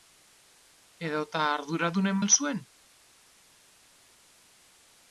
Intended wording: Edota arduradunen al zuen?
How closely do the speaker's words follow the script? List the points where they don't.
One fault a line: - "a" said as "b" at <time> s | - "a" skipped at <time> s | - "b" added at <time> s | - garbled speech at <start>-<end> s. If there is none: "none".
none